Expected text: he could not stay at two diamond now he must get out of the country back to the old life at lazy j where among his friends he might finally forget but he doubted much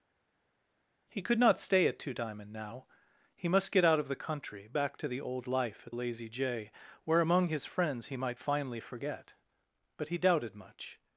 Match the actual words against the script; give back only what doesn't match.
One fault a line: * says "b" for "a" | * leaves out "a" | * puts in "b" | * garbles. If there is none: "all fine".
all fine